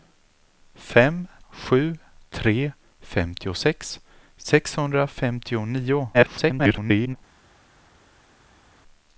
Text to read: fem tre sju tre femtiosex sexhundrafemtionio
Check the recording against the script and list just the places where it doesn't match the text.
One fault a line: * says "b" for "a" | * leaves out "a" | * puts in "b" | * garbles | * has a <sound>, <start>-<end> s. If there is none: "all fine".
* leaves out "tre"
* garbles